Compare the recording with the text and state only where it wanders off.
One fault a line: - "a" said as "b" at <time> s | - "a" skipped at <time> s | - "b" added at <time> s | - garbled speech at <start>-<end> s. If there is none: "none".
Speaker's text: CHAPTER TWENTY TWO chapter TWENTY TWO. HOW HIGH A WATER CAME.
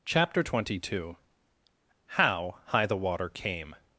- "chapter TWENTY TWO" skipped at 1.2 s
- "A" said as "THE" at 2.9 s